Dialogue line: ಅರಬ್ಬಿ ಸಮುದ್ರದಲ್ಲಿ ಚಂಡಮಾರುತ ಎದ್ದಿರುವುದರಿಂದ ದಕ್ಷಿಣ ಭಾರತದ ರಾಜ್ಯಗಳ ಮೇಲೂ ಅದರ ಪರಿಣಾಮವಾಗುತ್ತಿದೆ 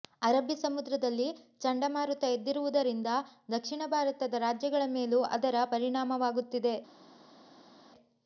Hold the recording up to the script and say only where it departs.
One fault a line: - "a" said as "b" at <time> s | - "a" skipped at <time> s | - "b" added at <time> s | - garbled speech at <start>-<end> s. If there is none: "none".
none